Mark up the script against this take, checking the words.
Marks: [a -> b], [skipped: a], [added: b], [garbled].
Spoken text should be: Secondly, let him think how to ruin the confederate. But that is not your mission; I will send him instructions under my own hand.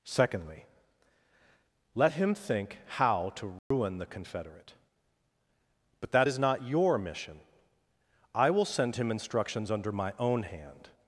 Secondly, let him think how to ruin the confederate. But that is not your mission; I will send him instructions under my own hand.